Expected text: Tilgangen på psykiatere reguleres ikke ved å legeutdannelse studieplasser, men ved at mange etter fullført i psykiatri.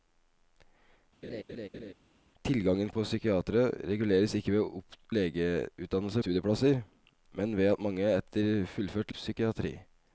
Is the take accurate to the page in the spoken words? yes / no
yes